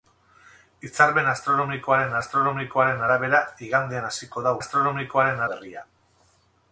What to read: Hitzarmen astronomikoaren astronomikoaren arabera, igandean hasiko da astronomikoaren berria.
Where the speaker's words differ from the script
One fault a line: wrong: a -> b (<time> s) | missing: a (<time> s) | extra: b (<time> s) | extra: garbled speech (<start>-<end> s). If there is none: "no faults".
no faults